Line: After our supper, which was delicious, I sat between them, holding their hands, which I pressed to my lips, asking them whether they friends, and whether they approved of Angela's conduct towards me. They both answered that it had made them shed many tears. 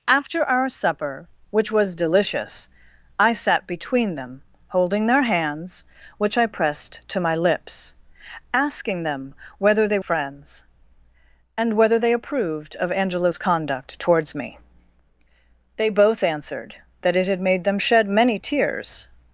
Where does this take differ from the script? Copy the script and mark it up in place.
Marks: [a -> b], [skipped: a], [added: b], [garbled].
After our supper, which was delicious, I sat between them, holding their hands, which I pressed to my lips, asking them whether they friends, and whether they approved of Angela's conduct towards me. They both answered that it had made them shed many tears.